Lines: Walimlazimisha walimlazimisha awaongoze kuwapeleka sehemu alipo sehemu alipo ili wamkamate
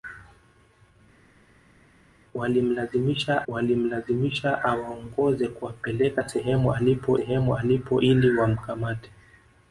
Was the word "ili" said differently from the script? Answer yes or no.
no